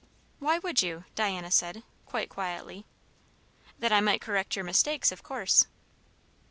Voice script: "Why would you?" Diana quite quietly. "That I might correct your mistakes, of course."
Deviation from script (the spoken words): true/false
true